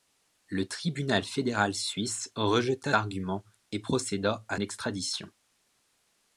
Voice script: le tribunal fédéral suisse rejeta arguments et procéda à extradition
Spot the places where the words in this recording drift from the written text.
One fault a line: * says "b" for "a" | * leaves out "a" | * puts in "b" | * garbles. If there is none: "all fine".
all fine